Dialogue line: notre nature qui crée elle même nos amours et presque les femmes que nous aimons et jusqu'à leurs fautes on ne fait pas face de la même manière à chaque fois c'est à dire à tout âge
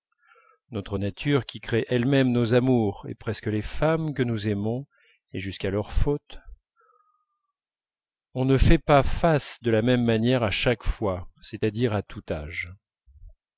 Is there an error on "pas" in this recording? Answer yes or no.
no